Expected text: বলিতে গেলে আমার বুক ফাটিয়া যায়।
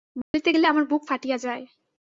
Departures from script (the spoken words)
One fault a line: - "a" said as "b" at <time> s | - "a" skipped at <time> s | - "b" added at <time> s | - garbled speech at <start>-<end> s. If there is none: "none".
none